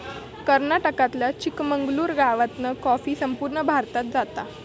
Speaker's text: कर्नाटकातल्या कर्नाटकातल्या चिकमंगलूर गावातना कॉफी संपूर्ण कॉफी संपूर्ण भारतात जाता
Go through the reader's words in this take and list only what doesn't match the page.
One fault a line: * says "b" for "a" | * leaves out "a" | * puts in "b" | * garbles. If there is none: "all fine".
* leaves out "कर्नाटकातल्या"
* leaves out "कॉफी संपूर्ण"